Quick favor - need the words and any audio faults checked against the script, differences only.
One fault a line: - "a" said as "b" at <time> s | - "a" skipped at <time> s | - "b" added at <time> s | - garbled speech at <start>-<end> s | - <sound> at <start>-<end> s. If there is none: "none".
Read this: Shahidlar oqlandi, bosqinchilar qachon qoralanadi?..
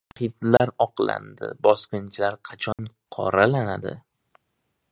- dropout at 0.6-0.6 s
- dropout at 2.7-2.8 s